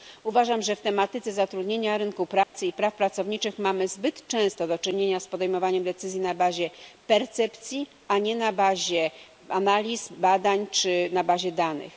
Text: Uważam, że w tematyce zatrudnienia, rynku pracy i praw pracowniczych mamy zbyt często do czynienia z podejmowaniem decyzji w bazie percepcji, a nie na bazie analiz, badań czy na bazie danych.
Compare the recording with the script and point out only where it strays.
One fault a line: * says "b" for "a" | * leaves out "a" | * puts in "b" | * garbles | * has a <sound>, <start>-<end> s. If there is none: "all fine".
* has a dropout, 2.4-2.5 s
* says "na" for "w"